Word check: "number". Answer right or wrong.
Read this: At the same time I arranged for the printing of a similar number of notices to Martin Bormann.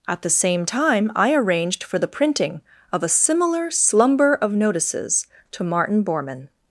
wrong